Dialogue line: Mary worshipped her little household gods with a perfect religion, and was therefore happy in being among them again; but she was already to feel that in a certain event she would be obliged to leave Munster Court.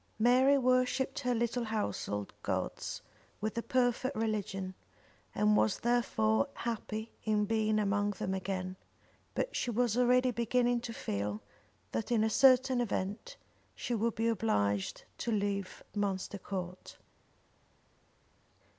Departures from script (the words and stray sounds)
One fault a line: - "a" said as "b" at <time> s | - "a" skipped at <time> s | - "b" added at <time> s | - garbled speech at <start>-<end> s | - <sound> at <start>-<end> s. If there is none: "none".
- "beginning" added at 10.3 s